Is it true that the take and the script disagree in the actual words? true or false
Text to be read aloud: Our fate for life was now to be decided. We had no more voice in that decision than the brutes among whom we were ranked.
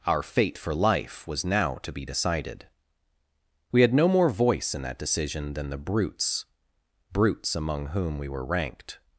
true